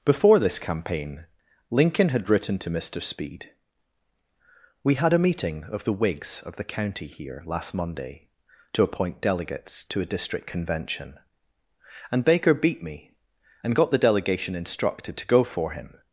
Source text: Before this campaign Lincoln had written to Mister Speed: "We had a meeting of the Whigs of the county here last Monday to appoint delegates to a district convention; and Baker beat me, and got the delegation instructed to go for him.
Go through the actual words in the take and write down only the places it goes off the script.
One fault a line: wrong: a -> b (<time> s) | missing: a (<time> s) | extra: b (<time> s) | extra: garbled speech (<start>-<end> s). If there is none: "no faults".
no faults